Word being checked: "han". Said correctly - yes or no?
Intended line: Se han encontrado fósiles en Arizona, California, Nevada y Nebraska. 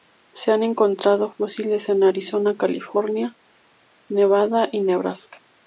yes